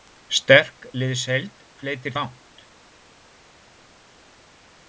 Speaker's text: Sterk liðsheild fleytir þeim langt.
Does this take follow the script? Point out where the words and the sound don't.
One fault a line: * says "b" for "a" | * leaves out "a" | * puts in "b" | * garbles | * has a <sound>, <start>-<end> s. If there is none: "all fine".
* leaves out "þeim"